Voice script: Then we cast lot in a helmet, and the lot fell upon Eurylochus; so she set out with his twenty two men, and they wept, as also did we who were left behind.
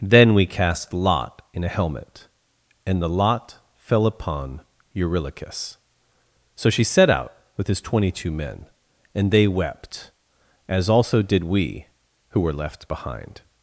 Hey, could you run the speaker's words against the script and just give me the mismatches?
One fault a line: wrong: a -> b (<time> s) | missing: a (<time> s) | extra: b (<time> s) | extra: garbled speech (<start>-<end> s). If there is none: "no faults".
no faults